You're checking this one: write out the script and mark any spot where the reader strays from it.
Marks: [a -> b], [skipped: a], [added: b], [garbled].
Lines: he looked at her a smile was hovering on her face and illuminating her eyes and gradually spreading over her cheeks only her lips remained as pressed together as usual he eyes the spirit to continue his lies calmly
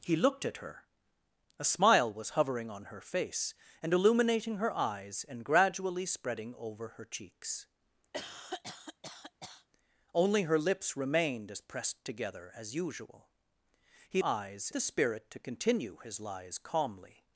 he looked at her a smile was hovering on her face and illuminating her eyes and gradually spreading over her cheeks only her lips remained as pressed together as usual he eyes the spirit to continue his lies calmly